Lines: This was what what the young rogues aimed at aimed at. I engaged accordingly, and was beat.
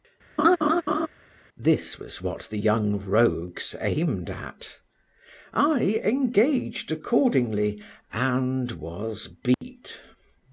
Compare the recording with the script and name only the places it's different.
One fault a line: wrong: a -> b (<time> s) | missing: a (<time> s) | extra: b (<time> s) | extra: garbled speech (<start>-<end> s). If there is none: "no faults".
missing: what (2.5 s)
missing: aimed at (4.8 s)